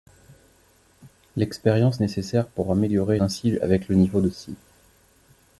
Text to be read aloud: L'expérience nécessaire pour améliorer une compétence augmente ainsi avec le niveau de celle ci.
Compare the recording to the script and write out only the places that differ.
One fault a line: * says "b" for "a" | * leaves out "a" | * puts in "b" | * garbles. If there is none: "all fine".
* leaves out "une compétence augmente"
* leaves out "celle"